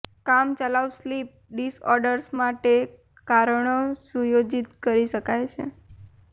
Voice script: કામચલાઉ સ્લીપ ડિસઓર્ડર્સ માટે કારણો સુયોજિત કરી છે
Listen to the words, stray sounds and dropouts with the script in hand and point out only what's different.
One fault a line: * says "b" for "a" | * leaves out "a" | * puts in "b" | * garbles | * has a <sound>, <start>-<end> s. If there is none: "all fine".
* puts in "શકાય"